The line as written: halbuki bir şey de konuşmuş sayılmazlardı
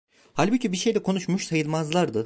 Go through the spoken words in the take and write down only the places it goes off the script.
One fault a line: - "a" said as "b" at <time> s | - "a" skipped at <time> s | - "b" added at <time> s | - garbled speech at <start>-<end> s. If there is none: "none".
none